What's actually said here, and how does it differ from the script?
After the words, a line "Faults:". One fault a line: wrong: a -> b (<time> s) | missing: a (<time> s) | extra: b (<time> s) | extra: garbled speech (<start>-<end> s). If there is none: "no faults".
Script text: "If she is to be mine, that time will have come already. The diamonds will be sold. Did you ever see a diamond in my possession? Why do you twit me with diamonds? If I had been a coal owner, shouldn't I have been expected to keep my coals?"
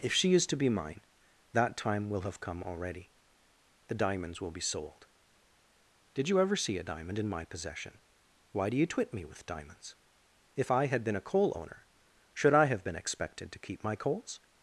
"If she is to be mine, that time will have come already. The diamonds will be sold. Did you ever see a diamond in my possession? Why do you twit me with diamonds? If I had been a coal owner, should I have been expected to keep my coals?"
Faults:
wrong: shouldn't -> should (12.3 s)